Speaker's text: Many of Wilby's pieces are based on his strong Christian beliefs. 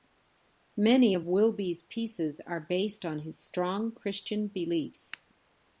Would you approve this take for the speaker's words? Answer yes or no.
yes